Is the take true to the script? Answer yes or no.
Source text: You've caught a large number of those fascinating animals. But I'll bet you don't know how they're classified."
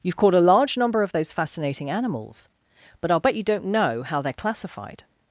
yes